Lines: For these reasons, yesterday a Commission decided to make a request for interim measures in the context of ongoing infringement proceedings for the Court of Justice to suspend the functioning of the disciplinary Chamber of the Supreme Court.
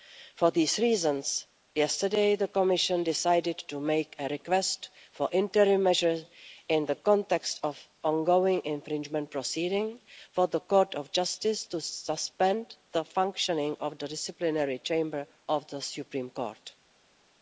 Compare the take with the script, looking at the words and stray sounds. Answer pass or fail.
fail